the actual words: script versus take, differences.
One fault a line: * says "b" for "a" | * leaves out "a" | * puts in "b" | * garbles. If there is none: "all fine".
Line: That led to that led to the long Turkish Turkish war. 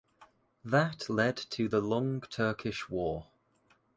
* leaves out "that led to"
* leaves out "Turkish"